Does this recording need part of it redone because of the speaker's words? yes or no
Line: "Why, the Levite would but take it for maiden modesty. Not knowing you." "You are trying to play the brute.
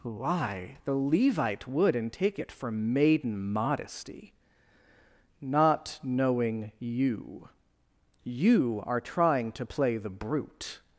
yes